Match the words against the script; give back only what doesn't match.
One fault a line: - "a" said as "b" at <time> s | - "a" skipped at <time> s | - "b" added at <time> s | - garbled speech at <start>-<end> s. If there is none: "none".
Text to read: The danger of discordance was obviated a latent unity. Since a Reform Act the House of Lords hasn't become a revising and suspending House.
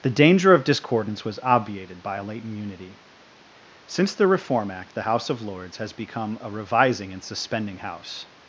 - "by" added at 2.0 s
- "a" said as "the" at 4.1 s
- "hasn't" said as "has" at 5.8 s